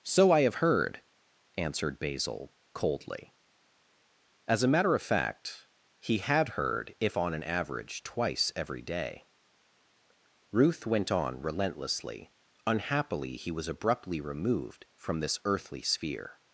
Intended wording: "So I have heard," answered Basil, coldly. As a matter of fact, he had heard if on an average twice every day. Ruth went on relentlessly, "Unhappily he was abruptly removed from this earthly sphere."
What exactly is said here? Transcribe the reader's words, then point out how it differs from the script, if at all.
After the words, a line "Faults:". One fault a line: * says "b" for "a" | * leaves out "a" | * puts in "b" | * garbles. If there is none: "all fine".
"So I have heard," answered Basil, coldly. As a matter of fact, he had heard if on an average twice every day. Ruth went on relentlessly, "Unhappily he was abruptly removed from this earthly sphere."
Faults:
all fine